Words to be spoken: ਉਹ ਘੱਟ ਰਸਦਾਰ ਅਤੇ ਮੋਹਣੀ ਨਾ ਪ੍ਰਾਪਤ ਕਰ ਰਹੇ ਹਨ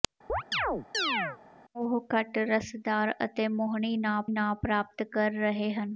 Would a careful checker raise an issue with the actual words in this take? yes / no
yes